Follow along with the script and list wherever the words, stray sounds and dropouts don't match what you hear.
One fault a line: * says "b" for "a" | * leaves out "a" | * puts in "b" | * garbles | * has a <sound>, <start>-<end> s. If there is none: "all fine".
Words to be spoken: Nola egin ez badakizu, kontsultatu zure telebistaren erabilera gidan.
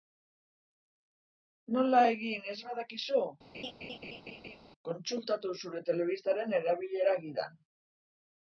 * has a laugh, 3.5-4.6 s